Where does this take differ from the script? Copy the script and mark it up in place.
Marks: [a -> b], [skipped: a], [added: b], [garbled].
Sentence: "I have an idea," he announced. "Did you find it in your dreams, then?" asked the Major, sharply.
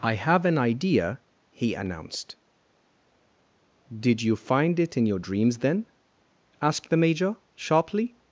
"I have an idea," he announced. "Did you find it in your dreams, then?" asked the Major, sharply.